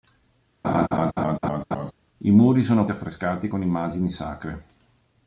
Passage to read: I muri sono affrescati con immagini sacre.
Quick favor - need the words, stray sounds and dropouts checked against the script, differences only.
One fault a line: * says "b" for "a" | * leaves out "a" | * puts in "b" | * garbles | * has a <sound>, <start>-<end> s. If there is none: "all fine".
* has a laugh, 0.6-1.9 s